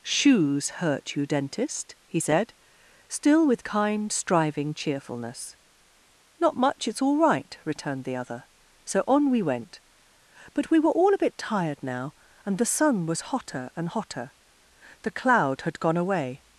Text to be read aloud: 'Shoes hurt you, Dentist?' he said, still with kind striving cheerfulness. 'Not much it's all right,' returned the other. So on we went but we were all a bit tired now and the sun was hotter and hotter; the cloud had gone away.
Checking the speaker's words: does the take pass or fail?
pass